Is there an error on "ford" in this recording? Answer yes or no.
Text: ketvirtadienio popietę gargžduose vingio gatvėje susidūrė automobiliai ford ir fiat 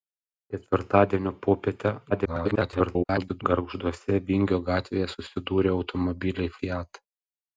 yes